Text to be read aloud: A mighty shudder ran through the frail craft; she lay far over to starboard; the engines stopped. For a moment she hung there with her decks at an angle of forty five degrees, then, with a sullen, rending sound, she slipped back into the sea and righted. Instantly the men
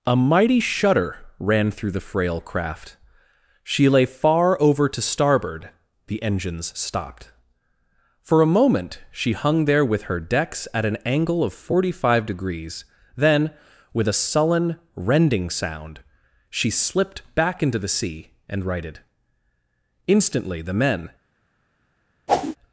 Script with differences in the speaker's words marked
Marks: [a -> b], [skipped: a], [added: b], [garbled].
A mighty shudder ran through the frail craft; she lay far over to starboard; the engines stopped. For a moment she hung there with her decks at an angle of forty five degrees, then, with a sullen, rending sound, she slipped back into the sea and righted. Instantly the men